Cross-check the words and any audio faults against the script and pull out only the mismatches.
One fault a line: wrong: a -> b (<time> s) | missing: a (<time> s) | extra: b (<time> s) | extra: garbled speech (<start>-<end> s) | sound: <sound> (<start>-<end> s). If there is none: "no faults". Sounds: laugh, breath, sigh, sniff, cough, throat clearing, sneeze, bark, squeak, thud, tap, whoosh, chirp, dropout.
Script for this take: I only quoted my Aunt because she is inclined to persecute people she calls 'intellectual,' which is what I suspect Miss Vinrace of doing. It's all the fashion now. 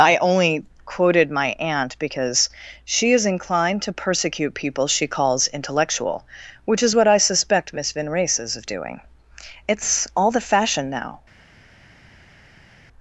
extra: is (8.4 s)